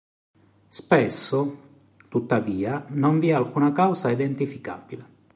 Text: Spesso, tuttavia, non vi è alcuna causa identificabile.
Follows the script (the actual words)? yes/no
yes